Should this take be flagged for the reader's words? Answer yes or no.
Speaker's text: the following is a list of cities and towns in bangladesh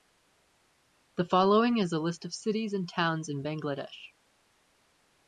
no